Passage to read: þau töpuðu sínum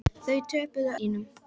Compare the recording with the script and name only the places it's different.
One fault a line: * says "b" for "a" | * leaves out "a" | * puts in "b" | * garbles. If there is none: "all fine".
all fine